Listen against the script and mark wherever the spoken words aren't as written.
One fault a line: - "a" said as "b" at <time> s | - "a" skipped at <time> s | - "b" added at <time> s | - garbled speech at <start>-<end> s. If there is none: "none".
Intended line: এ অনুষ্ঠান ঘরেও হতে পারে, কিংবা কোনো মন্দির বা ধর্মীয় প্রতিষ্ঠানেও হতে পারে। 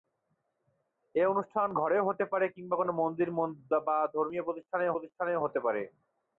- "প্রতিষ্ঠানেও" added at 4.9 s